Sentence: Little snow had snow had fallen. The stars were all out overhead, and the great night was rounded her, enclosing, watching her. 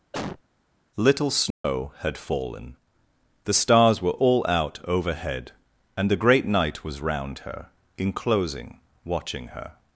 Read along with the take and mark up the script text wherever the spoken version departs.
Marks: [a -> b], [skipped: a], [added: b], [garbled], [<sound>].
[cough] Little snow [dropout] had [skipped: snow had] fallen. The stars were all out overhead, and the great night was [rounded -> round] her, enclosing, watching her.